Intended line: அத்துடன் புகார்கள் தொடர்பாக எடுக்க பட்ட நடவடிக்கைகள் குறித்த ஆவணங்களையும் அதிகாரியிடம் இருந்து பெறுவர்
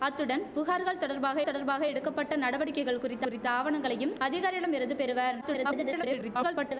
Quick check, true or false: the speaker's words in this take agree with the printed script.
false